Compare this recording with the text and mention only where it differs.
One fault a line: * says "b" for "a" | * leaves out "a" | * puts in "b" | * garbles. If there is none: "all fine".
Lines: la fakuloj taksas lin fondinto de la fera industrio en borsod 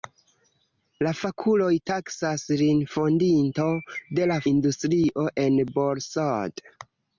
* leaves out "fera"